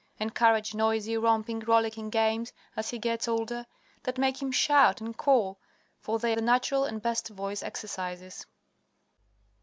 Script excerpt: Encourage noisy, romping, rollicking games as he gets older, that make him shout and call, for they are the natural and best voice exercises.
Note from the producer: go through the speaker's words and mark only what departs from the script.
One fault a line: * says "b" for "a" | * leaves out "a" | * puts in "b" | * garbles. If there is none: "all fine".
* leaves out "are"